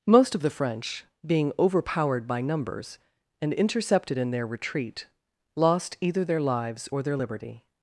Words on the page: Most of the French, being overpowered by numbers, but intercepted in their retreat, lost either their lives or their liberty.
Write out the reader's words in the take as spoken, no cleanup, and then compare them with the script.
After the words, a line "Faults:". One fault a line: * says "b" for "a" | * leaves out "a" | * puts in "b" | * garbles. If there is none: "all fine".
Most of the French, being overpowered by numbers, and intercepted in their retreat, lost either their lives or their liberty.
Faults:
* says "and" for "but"